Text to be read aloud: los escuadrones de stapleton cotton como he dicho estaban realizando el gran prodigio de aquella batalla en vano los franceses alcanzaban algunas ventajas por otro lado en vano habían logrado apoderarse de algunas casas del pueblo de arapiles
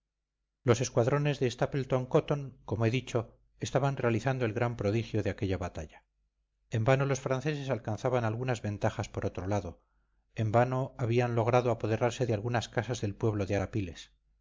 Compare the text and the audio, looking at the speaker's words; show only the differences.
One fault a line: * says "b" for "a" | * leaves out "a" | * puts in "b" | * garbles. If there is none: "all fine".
all fine